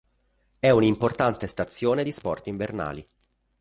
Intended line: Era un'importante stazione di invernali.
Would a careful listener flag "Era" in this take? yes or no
yes